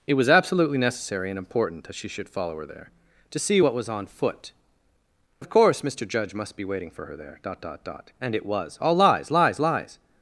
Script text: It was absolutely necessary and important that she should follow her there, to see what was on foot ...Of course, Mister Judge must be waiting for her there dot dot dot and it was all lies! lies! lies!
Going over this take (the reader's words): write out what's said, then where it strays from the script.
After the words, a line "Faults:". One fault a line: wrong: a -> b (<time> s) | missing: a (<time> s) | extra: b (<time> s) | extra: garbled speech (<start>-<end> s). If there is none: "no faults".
It was absolutely necessary and important that she should follow her there, to see what was on foot ...Of course, Mister Judge must be waiting for her there dot dot dot and it was all lies! lies! lies!
Faults:
no faults